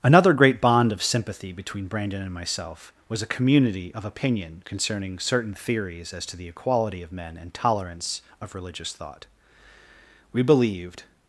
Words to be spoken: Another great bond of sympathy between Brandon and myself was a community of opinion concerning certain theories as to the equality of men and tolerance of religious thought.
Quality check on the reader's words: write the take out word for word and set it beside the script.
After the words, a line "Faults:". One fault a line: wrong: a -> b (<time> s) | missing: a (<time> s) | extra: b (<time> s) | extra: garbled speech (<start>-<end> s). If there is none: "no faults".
Another great bond of sympathy between Brandon and myself was a community of opinion concerning certain theories as to the equality of men and tolerance of religious thought. We believed
Faults:
extra: We believed (10.3 s)